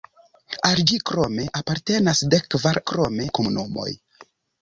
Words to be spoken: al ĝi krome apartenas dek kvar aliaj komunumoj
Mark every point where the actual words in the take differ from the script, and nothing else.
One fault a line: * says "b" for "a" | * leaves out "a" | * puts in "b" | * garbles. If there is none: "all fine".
* says "krome" for "aliaj"